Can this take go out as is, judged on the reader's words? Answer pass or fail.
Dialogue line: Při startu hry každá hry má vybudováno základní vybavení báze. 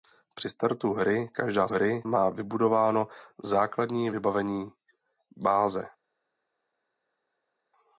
pass